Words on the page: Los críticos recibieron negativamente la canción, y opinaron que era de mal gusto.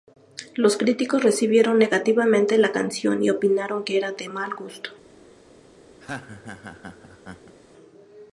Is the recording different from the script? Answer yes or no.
no